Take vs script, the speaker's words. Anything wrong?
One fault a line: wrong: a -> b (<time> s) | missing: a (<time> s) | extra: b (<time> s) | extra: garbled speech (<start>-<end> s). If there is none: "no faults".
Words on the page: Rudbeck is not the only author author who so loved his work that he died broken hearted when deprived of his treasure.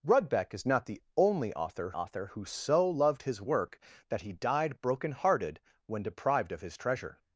no faults